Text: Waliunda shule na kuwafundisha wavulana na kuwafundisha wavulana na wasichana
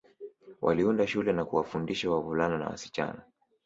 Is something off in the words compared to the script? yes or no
yes